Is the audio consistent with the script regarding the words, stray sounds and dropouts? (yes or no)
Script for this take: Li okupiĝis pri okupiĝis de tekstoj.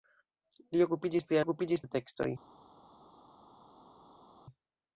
yes